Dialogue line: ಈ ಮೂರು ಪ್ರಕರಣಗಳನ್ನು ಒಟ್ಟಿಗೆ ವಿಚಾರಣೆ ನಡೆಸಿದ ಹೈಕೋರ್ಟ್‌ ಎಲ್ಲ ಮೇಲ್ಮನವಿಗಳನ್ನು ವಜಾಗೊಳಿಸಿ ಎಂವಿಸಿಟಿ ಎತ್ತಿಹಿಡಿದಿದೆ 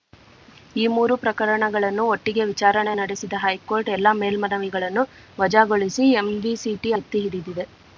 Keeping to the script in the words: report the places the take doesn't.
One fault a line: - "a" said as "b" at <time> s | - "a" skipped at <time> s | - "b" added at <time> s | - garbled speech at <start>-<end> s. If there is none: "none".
none